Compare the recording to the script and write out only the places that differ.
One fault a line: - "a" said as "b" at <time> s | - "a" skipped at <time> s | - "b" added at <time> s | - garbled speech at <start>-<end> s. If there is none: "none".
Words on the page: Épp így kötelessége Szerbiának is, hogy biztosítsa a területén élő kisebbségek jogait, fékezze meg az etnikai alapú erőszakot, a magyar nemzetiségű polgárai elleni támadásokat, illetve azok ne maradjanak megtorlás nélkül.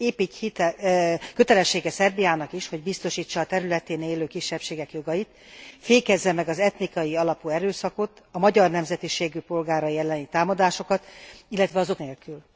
- "ne maradjanak megtorlás" skipped at 12.0 s